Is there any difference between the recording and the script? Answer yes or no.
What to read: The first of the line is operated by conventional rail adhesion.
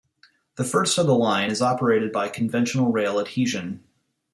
no